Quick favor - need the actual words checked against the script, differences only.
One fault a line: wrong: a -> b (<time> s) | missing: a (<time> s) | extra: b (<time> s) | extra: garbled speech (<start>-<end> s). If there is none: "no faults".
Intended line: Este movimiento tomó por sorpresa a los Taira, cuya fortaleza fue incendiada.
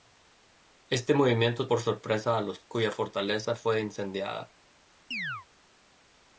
missing: tomó (1.7 s)
missing: Taira (2.6 s)